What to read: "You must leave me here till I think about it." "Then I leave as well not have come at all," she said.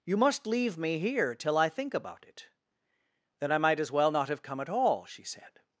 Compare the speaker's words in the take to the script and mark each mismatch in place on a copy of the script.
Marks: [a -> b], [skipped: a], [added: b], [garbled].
"You must leave me here till I think about it." "Then I [leave -> might] as well not have come at all," she said.